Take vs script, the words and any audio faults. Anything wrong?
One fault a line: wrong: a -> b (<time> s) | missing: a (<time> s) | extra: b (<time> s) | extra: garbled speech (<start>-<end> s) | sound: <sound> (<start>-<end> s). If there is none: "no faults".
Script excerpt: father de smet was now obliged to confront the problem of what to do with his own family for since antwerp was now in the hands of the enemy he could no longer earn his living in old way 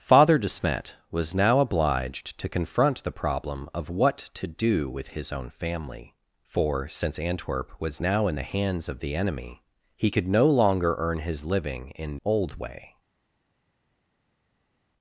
no faults